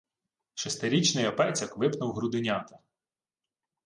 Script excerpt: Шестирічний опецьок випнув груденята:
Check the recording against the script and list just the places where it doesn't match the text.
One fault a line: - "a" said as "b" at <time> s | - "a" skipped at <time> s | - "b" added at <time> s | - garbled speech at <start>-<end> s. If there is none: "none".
none